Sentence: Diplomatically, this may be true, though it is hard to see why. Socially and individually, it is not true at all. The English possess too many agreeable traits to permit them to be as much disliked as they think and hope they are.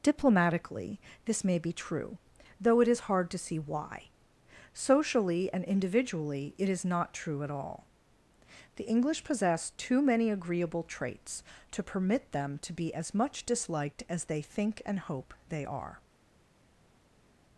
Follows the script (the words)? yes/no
yes